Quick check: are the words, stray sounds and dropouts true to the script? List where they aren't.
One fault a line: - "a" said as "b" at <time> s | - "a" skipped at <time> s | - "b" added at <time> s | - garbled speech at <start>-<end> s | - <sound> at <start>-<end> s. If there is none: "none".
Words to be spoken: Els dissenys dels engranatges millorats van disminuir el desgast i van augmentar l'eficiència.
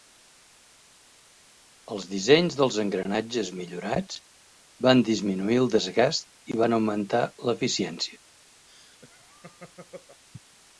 - laugh at 8.7-10.2 s